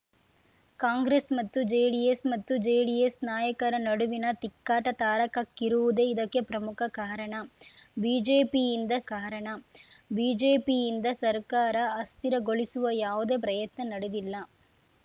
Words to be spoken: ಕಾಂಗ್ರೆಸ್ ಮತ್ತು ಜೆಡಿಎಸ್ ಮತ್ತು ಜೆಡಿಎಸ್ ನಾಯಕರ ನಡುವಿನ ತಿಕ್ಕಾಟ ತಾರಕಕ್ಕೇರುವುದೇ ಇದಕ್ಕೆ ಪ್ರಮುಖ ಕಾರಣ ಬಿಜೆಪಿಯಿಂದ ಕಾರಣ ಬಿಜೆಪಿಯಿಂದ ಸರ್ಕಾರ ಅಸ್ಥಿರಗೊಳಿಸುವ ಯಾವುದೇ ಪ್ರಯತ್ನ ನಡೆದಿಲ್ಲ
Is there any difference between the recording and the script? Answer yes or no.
no